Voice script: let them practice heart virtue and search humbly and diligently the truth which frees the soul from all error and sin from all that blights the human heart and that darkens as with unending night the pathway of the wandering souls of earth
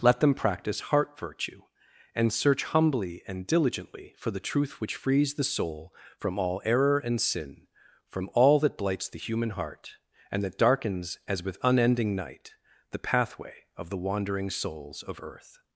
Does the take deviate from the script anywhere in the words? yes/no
yes